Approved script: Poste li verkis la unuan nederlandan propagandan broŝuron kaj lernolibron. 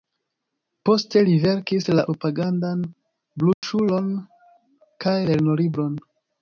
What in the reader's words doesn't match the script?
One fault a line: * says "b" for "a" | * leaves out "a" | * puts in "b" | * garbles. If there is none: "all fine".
* leaves out "unuan nederlandan"